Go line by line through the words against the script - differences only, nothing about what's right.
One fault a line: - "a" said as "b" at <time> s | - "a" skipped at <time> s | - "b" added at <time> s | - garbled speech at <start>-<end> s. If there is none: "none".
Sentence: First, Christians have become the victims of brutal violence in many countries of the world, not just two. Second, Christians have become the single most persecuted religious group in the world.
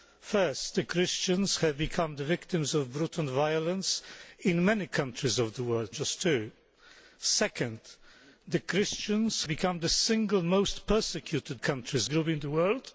- "not" skipped at 5.9 s
- "have" skipped at 9.4 s
- "religious" said as "countries" at 11.6 s